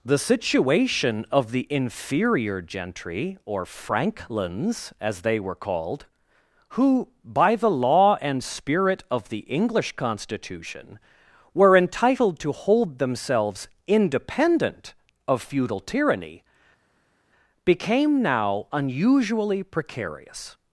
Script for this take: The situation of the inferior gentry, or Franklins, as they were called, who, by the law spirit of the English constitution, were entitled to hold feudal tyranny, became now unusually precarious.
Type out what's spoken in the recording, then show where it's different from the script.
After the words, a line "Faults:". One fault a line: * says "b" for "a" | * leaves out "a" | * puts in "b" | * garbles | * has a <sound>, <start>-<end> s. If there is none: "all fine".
The situation of the inferior gentry, or Franklins, as they were called, who, by the law and spirit of the English constitution, were entitled to hold themselves independent of feudal tyranny, became now unusually precarious.
Faults:
* puts in "and"
* puts in "themselves independent of"